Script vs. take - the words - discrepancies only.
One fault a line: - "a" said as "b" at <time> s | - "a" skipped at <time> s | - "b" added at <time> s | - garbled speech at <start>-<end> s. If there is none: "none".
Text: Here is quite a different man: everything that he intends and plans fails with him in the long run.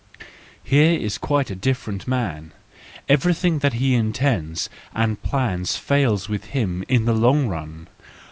none